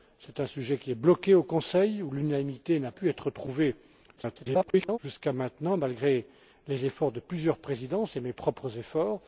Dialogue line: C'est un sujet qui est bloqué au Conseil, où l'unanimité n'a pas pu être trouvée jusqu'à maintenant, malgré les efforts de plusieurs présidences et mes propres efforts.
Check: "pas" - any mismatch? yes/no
yes